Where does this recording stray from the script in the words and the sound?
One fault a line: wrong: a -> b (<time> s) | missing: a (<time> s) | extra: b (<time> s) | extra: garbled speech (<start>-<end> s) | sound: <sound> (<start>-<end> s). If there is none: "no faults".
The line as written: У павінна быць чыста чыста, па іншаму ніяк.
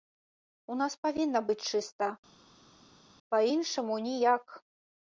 extra: нас (0.8 s)
missing: чыста (2.1 s)